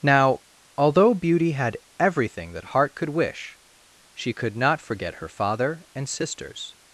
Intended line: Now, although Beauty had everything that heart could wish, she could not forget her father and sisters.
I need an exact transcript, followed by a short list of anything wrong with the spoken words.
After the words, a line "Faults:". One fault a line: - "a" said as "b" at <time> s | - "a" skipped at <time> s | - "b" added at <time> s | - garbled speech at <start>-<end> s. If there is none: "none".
Now, although Beauty had everything that heart could wish, she could not forget her father and sisters.
Faults:
none